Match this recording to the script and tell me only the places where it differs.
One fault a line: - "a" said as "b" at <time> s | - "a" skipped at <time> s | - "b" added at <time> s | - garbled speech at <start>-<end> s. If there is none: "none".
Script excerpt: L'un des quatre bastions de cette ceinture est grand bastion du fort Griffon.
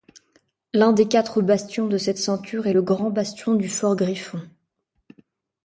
- "le" added at 2.7 s